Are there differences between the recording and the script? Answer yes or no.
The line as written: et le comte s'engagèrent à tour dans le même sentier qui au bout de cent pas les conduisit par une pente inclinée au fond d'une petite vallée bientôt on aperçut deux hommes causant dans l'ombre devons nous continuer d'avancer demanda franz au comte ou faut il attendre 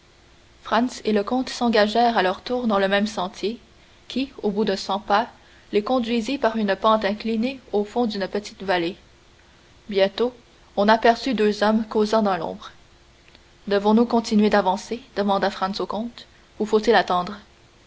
yes